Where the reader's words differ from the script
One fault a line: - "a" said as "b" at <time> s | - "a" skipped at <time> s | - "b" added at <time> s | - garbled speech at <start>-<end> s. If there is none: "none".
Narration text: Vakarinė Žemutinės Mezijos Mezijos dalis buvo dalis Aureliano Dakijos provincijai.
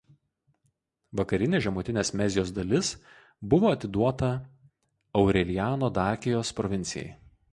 - "Mezijos" skipped at 2.5 s
- "dalis" said as "atiduota" at 3.7 s